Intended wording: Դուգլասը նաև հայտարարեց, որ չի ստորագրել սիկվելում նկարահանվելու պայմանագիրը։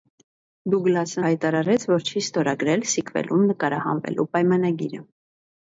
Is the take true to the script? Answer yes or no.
no